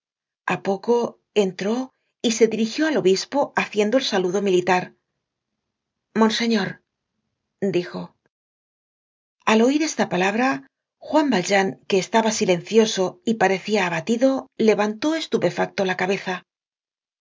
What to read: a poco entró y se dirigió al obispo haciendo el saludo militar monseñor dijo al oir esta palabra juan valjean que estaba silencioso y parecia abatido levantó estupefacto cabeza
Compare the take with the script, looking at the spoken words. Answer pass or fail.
fail